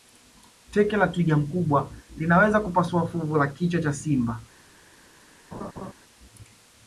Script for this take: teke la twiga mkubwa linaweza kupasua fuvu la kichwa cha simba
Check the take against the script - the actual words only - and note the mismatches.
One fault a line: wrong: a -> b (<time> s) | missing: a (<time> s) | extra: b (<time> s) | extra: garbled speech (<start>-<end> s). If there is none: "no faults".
no faults